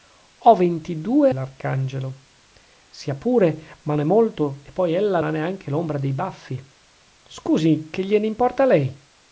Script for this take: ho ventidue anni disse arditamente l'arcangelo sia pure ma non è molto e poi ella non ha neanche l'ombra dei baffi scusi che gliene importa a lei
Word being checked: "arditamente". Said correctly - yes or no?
no